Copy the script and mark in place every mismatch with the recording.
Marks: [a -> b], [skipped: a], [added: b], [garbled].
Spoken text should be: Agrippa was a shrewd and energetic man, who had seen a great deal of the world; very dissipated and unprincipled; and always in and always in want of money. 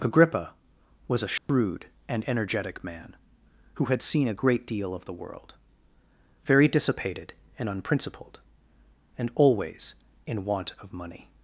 Agrippa was a shrewd and energetic man, who had seen a great deal of the world; very dissipated and unprincipled; and always in [skipped: and always in] want of money.